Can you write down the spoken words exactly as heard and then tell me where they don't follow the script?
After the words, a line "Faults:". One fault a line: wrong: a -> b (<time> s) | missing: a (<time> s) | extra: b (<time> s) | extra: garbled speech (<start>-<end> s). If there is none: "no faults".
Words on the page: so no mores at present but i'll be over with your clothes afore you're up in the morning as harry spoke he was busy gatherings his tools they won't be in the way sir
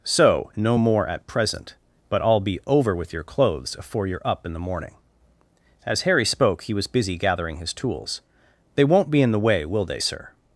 so no more at present but i'll be over with your clothes afore you're up in the morning as harry spoke he was busy gathering his tools they won't be in the way will they sir
Faults:
wrong: mores -> more (0.8 s)
wrong: gatherings -> gathering (7.2 s)
extra: will they (9.7 s)